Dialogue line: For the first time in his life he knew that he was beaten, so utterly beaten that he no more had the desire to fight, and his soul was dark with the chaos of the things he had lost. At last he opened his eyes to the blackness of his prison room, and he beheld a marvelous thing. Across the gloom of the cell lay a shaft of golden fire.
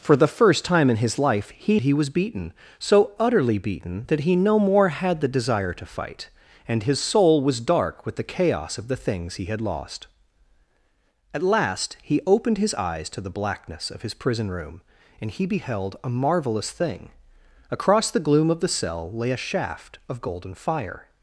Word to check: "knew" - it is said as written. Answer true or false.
false